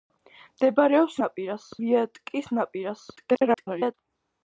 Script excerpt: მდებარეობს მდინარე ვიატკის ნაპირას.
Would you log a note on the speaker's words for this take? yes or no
yes